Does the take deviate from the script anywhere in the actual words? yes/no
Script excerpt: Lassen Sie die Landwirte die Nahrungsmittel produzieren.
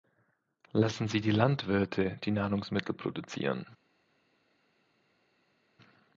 no